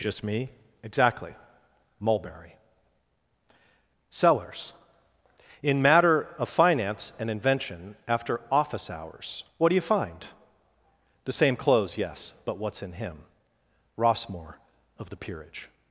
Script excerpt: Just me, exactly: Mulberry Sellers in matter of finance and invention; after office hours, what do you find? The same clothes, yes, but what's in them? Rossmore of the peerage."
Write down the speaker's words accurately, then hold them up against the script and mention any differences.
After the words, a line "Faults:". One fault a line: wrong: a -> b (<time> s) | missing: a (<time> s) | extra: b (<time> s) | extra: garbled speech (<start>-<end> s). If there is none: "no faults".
Just me, exactly: Mulberry Sellers in matter of finance and invention; after office hours, what do you find? The same clothes, yes, but what's in him? Rossmore of the peerage."
Faults:
wrong: them -> him (12.9 s)